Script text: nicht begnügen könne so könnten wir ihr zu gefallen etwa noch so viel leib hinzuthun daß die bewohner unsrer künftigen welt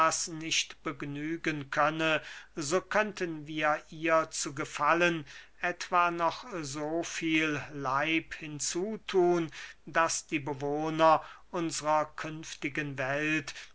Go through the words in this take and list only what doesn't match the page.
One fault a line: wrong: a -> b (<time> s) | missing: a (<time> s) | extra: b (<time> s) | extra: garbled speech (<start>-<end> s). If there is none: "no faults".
no faults